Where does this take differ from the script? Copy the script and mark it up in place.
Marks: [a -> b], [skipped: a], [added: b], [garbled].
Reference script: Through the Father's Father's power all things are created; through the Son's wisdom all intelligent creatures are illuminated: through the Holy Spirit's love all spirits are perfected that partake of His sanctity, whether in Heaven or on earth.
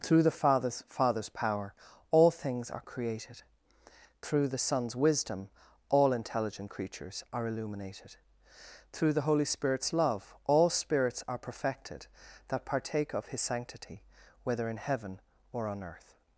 Through the Father's Father's power all things are created; through the Son's wisdom all intelligent creatures are illuminated: through the Holy Spirit's love all spirits are perfected that partake of His sanctity, whether in Heaven or on earth.